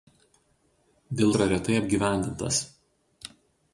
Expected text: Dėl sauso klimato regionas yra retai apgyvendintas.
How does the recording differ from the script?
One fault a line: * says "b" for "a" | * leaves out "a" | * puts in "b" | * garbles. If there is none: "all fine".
* leaves out "sauso klimato regionas"